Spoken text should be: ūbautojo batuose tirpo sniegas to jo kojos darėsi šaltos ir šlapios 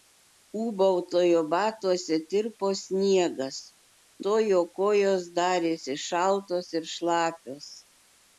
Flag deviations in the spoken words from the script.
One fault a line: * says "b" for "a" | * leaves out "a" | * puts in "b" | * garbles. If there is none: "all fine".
all fine